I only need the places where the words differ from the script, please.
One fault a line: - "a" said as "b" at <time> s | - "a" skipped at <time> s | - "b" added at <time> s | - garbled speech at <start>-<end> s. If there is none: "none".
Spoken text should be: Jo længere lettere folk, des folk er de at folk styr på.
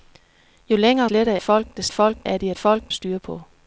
none